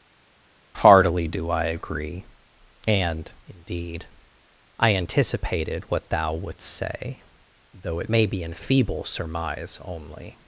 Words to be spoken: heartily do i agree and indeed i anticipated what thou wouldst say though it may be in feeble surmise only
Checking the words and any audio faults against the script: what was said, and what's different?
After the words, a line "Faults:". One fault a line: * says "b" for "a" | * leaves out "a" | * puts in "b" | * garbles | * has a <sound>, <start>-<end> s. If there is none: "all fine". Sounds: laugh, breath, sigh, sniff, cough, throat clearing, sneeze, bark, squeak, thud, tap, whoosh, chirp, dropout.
heartily do i agree and indeed i anticipated what thou wouldst say though it may be in feeble surmise only
Faults:
all fine